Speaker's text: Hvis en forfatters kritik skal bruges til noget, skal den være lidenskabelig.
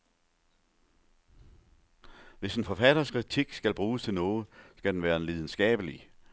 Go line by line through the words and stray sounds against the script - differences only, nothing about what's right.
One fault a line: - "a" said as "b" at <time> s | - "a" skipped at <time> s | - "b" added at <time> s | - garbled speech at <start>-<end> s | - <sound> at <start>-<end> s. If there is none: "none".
none